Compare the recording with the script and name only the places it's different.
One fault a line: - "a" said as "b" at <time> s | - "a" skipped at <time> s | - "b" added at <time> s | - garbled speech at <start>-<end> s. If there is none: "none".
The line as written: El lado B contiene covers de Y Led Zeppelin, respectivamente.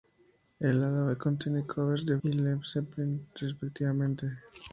none